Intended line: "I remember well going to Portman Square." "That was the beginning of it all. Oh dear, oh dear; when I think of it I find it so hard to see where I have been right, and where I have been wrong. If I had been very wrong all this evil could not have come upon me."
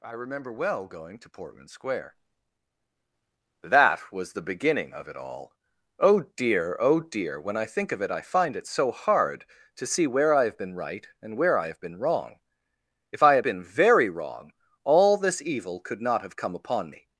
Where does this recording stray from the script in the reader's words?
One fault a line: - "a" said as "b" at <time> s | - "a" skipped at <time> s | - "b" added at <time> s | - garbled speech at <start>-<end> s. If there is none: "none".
none